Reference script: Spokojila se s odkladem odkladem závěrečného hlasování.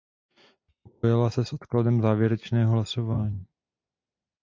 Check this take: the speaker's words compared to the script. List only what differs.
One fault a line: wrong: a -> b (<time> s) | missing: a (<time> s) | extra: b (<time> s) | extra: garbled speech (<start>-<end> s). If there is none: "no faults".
missing: odkladem (2.0 s)